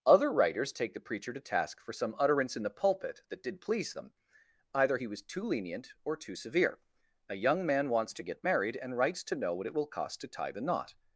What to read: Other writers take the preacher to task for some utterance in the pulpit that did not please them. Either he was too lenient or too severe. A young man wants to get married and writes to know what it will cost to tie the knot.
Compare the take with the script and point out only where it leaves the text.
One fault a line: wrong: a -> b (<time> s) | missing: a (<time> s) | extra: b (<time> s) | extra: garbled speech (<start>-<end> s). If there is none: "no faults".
missing: not (3.6 s)